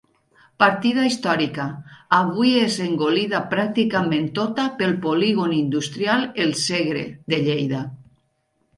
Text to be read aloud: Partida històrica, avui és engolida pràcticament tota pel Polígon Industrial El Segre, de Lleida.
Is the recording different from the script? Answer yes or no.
no